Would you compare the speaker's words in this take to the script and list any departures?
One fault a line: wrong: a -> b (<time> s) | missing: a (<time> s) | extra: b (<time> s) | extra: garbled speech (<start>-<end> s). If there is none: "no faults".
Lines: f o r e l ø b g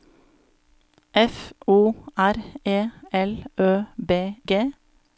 no faults